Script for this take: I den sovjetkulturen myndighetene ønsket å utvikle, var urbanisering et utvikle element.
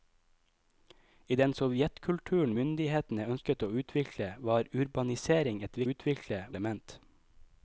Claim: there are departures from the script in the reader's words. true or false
false